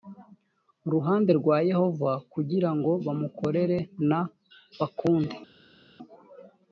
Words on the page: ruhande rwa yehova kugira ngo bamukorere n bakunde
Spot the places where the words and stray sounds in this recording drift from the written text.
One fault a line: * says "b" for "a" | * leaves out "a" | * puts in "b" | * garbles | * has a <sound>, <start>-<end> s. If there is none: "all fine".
all fine